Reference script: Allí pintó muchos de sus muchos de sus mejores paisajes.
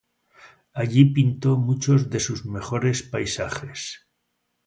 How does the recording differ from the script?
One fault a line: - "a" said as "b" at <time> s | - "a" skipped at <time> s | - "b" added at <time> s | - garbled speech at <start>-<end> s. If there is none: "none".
- "muchos de sus" skipped at 2.5 s